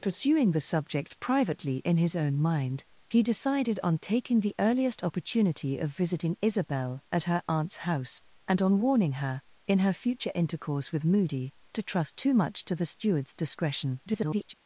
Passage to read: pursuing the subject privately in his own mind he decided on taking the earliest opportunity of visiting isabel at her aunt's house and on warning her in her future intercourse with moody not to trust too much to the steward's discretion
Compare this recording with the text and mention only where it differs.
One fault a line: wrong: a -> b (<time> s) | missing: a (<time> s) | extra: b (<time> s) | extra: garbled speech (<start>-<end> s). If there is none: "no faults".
missing: not (11.5 s)
extra: garbled speech (14.1-14.5 s)